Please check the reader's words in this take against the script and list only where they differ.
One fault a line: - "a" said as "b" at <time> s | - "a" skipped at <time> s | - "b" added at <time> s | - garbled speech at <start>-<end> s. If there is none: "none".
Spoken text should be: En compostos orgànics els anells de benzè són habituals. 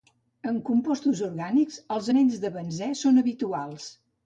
none